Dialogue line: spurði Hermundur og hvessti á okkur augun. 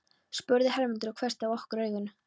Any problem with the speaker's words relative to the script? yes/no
no